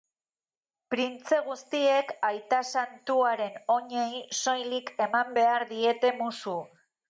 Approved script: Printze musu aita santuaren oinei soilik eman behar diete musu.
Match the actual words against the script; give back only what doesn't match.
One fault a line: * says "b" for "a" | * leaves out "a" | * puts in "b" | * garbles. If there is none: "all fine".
* says "guztiek" for "musu"